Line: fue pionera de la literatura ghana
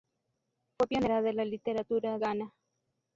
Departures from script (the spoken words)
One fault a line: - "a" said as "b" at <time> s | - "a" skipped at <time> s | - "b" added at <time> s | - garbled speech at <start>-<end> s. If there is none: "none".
none